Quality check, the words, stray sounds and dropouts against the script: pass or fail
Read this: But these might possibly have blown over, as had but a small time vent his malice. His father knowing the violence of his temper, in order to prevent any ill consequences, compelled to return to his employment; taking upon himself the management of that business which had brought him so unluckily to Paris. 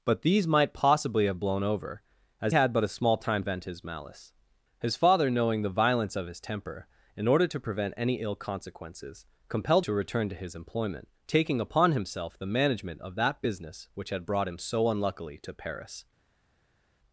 pass